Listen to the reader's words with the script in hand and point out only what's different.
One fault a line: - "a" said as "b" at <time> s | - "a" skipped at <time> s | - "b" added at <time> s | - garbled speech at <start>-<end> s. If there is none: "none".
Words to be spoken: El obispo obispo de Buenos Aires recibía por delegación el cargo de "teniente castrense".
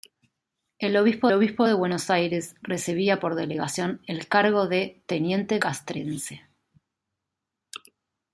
none